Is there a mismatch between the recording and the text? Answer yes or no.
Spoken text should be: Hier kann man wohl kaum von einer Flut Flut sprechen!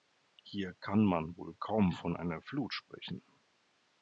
yes